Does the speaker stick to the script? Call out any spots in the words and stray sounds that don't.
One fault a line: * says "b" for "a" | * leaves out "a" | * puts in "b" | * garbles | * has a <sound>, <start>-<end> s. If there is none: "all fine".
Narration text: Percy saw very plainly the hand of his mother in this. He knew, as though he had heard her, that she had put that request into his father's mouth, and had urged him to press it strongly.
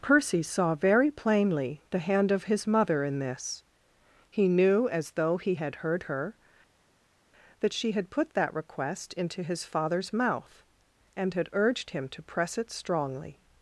all fine